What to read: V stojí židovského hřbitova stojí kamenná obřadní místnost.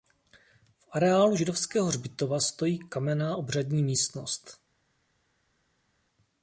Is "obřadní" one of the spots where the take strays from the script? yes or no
no